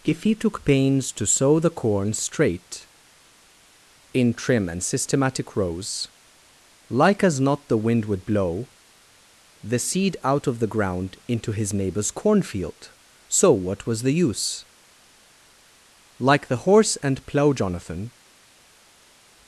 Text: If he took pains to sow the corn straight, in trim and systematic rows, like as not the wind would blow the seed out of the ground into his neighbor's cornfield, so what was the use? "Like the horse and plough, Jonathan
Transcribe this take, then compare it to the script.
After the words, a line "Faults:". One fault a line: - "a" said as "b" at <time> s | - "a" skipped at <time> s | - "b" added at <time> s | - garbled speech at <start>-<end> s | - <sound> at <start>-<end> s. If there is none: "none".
If he took pains to sow the corn straight, in trim and systematic rows, like as not the wind would blow the seed out of the ground into his neighbor's cornfield, so what was the use? "Like the horse and plough, Jonathan
Faults:
none